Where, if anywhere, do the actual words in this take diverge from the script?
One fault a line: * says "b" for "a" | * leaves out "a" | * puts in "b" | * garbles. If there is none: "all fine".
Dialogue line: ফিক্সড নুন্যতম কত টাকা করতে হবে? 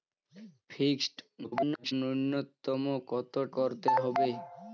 * garbles
* leaves out "টাকা"